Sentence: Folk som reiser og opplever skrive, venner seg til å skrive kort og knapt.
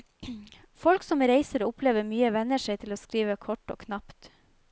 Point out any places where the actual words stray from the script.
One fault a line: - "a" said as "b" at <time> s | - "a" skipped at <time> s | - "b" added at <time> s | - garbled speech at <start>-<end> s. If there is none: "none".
- "skrive" said as "mye" at 2.1 s